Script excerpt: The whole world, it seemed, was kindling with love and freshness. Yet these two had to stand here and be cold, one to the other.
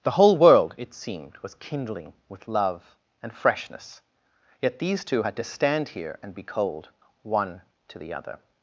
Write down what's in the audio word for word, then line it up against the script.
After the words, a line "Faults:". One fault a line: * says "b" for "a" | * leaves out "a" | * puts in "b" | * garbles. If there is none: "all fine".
The whole world, it seemed, was kindling with love and freshness. Yet these two had to stand here and be cold, one to the other.
Faults:
all fine